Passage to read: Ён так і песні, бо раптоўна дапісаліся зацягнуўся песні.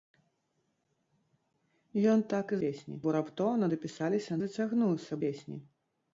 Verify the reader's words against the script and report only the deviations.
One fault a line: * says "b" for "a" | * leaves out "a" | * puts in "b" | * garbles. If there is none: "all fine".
all fine